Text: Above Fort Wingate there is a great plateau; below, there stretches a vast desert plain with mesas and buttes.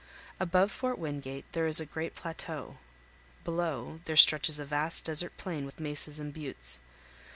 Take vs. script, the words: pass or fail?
pass